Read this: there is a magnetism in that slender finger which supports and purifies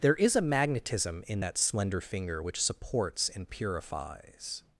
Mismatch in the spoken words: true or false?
false